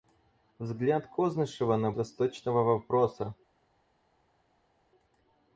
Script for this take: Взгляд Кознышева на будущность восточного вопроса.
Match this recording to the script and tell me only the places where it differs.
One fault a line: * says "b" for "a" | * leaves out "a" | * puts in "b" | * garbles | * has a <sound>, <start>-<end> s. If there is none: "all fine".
* leaves out "будущность"